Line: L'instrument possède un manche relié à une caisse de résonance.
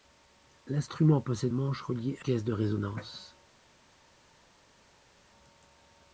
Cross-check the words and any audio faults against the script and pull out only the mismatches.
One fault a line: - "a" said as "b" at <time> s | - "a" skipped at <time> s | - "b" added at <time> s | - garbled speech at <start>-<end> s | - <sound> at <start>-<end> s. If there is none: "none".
- "un" skipped at 1.5 s
- "une" skipped at 2.3 s